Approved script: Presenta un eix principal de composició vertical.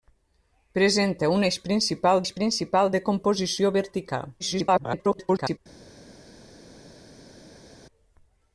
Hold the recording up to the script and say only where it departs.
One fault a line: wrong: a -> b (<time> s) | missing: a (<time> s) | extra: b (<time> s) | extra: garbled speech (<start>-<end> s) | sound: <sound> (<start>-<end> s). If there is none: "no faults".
extra: eix principal (2.2 s)
extra: garbled speech (4.4-5.6 s)